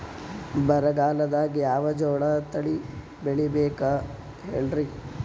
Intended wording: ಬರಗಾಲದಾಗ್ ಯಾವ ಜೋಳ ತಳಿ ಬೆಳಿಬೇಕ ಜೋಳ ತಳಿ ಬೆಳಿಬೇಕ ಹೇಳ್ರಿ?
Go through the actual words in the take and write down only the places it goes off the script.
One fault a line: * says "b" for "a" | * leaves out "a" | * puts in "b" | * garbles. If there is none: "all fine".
* leaves out "ಜೋಳ ತಳಿ ಬೆಳಿಬೇಕ"